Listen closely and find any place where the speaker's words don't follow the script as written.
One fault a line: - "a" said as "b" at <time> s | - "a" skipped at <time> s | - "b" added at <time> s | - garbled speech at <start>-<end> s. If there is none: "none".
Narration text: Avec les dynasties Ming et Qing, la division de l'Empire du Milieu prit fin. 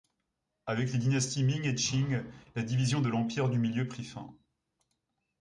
none